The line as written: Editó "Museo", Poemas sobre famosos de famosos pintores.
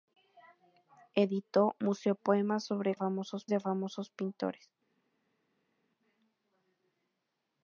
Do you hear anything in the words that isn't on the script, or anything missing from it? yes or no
no